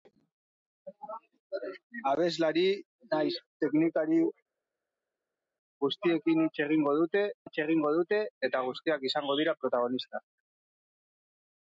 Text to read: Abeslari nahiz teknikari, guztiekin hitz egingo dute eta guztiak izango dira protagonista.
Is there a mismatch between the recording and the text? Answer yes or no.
yes